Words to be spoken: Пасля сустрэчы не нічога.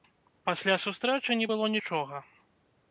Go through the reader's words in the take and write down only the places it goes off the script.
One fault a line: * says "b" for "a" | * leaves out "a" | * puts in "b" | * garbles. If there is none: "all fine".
* puts in "было"